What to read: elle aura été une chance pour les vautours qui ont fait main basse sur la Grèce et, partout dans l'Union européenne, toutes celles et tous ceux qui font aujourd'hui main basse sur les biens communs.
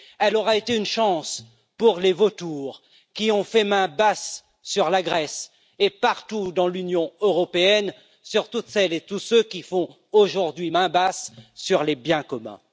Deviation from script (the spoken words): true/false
true